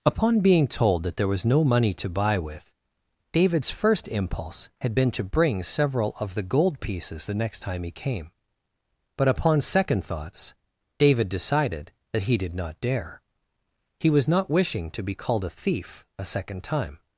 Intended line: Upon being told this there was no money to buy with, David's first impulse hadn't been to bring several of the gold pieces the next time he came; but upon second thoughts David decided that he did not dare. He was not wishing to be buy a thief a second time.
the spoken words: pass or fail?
fail